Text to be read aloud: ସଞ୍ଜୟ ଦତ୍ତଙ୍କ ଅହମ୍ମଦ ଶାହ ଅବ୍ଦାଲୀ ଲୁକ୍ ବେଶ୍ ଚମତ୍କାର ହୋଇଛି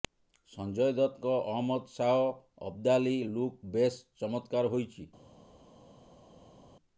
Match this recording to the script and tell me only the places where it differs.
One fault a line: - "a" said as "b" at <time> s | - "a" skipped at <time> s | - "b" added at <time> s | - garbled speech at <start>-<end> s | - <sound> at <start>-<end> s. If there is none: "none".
none